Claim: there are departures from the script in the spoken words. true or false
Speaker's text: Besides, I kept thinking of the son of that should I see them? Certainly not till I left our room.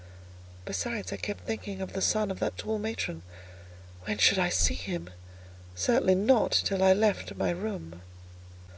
true